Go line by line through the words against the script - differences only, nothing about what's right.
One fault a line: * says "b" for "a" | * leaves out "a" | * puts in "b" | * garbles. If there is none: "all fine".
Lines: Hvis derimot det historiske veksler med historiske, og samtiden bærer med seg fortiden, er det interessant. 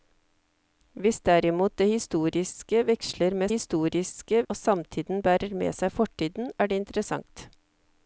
all fine